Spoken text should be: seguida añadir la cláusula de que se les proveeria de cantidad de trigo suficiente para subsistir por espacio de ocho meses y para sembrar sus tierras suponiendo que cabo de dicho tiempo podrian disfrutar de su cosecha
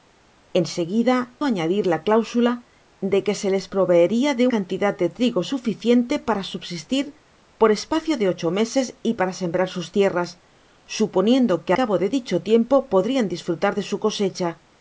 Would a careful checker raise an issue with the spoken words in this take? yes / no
no